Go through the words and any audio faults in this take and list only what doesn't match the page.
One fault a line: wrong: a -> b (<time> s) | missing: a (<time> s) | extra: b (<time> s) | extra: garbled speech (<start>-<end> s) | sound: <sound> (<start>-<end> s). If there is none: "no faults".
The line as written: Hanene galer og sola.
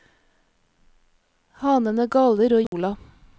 sound: dropout (2.7-2.7 s)